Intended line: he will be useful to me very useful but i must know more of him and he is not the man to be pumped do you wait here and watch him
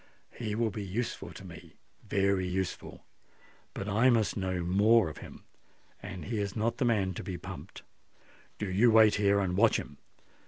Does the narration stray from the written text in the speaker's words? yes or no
no